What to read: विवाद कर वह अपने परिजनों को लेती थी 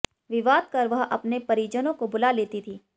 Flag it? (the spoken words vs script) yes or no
yes